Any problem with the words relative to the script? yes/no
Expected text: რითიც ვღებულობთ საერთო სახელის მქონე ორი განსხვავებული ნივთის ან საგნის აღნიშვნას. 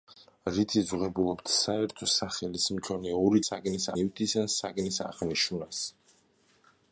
yes